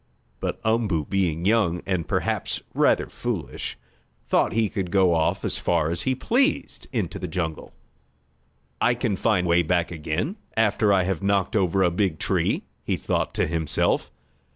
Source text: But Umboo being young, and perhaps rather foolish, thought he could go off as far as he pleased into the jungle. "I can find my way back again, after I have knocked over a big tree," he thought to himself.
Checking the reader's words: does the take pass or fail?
fail